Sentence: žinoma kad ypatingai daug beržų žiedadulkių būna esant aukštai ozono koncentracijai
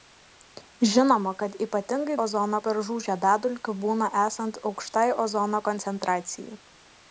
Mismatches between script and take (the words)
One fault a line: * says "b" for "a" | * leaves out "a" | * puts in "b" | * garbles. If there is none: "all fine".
* says "ozono" for "daug"